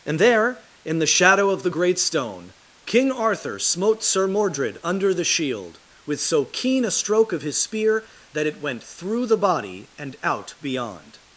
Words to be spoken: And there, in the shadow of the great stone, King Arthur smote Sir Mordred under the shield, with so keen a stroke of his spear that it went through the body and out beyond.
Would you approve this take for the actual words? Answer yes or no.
yes